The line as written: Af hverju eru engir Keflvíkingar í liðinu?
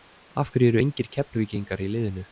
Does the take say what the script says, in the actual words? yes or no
yes